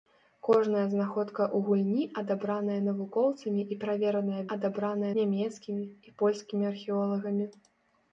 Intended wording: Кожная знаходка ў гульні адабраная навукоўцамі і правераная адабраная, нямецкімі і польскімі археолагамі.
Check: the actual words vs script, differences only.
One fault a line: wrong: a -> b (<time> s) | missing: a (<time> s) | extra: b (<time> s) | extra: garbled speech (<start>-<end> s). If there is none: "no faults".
no faults